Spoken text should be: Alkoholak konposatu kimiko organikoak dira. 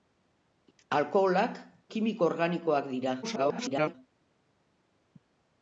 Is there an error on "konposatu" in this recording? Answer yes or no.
yes